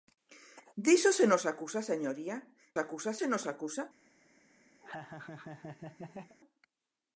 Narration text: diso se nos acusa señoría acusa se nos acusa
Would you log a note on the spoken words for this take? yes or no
no